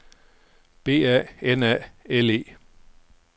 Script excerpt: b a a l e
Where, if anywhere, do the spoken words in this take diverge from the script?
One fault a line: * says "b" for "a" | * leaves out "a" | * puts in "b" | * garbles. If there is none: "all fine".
* puts in "n"